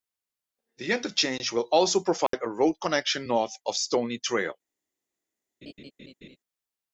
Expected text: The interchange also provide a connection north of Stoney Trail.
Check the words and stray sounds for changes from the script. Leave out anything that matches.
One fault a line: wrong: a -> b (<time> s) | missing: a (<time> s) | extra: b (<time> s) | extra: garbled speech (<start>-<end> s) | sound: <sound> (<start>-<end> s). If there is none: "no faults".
extra: will (1.5 s)
sound: dropout (2.3-2.3 s)
extra: road (2.5 s)
sound: laugh (5.6-6.4 s)